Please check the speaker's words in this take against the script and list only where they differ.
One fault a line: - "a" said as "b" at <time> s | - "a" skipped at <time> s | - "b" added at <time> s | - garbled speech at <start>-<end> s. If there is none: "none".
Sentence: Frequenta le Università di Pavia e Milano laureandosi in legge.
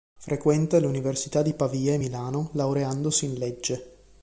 none